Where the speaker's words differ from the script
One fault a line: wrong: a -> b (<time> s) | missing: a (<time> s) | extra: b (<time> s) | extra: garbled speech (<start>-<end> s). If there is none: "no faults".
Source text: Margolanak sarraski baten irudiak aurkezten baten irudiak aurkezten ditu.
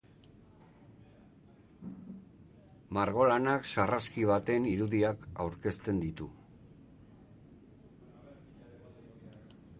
missing: baten irudiak aurkezten (6.0 s)